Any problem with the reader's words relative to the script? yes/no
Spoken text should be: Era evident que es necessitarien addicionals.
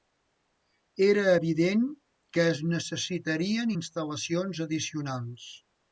yes